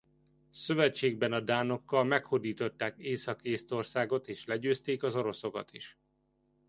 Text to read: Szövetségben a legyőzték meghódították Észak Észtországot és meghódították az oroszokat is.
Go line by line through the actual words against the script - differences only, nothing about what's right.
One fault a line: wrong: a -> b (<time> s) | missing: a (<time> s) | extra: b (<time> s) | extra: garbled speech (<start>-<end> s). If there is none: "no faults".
wrong: legyőzték -> dánokkal (1.4 s)
wrong: meghódították -> legyőzték (4.5 s)